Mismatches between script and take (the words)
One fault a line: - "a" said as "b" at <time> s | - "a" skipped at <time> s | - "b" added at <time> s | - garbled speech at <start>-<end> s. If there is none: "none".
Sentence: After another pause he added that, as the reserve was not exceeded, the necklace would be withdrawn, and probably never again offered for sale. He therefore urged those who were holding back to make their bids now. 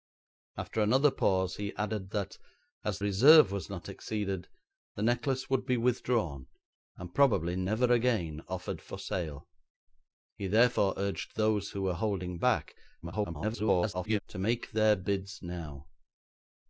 - "the" skipped at 3.0 s
- garbled speech at 13.0-14.2 s